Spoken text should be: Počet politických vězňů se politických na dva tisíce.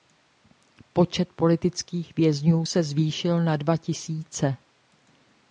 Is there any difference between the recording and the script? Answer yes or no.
yes